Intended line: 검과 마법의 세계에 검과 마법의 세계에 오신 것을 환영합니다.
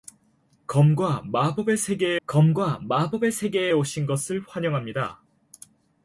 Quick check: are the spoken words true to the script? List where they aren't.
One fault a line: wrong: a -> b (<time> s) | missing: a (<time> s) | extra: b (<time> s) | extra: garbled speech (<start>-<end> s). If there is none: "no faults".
no faults